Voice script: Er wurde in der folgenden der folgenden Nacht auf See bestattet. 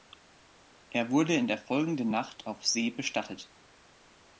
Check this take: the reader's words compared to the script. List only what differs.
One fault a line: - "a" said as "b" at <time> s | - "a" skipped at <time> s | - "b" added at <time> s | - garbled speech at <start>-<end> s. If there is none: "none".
- "der folgenden" skipped at 2.1 s